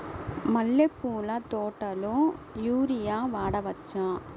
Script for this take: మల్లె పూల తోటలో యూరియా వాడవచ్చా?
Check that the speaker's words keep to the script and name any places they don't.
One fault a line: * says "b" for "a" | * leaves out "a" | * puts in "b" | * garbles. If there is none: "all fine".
all fine